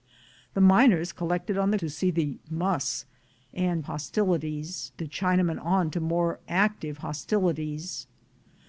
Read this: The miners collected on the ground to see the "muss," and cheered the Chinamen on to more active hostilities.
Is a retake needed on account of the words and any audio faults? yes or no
yes